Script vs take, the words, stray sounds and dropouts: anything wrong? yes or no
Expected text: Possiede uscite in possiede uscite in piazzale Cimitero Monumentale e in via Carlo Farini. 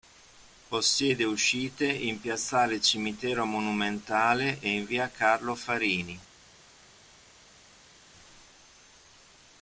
yes